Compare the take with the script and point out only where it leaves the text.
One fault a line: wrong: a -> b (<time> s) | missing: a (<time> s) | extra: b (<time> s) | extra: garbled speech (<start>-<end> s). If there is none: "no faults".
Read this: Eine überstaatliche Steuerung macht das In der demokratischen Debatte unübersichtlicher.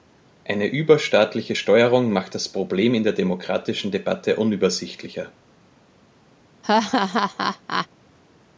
extra: Problem (2.5 s)